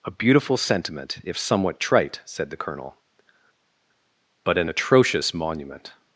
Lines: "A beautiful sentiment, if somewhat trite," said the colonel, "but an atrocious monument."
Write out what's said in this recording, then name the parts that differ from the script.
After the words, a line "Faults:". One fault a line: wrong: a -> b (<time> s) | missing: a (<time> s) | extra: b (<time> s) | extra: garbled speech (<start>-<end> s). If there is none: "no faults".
"A beautiful sentiment, if somewhat trite," said the colonel, "but an atrocious monument."
Faults:
no faults